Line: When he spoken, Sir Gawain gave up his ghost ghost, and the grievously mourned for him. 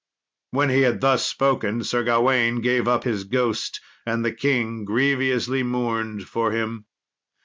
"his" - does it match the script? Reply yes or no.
yes